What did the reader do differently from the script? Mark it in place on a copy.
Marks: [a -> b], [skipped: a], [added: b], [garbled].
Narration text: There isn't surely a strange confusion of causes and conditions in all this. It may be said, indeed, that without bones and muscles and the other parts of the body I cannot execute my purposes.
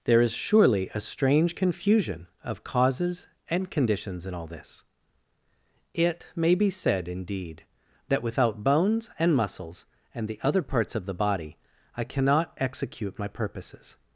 There [isn't -> is] surely a strange confusion of causes and conditions in all this. It may be said, indeed, that without bones and muscles and the other parts of the body I cannot execute my purposes.